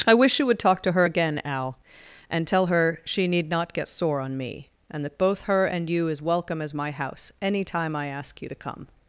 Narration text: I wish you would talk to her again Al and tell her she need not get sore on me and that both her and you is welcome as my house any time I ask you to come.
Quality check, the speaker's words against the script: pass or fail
pass